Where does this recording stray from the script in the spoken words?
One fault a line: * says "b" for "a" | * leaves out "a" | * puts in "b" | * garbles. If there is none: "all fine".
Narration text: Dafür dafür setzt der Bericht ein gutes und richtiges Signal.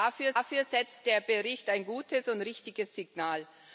all fine